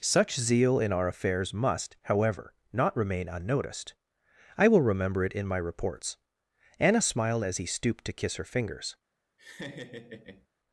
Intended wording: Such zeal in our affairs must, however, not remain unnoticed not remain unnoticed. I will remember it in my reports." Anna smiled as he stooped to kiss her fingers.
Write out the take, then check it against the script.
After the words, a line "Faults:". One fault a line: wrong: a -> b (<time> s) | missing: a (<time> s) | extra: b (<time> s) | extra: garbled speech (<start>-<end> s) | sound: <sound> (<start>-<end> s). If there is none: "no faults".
Such zeal in our affairs must, however, not remain unnoticed. I will remember it in my reports." Anna smiled as he stooped to kiss her fingers.
Faults:
missing: not remain unnoticed (3.9 s)
sound: laugh (9.4-10.5 s)